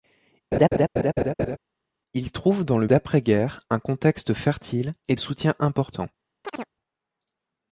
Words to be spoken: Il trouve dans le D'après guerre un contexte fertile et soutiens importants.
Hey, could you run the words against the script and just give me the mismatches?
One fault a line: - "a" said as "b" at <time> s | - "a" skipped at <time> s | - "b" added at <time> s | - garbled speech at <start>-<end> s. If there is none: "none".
none